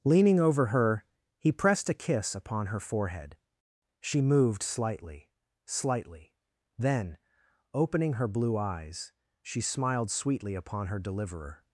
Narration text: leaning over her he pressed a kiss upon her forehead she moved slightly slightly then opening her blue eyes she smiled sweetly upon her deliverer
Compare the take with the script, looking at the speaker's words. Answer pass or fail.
pass